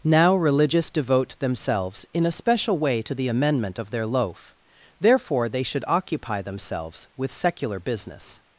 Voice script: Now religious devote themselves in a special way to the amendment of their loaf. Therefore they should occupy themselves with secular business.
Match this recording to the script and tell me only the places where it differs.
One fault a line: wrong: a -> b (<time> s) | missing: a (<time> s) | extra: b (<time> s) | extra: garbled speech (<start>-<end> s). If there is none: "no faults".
no faults